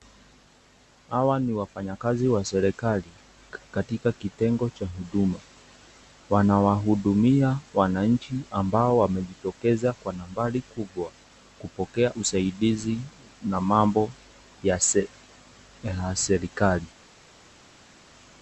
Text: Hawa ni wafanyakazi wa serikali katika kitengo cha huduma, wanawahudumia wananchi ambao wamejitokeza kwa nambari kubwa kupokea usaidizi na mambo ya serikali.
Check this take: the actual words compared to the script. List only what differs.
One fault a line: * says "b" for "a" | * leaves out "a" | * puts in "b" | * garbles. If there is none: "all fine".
all fine